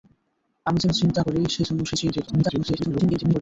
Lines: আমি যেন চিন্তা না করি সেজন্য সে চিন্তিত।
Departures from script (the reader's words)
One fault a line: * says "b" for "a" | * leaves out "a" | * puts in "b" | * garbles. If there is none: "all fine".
* leaves out "না"
* garbles